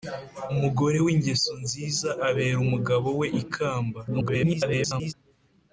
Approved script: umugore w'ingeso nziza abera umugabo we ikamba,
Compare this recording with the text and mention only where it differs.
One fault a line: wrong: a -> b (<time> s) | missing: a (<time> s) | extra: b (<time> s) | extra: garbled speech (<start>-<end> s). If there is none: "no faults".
extra: garbled speech (4.1-5.1 s)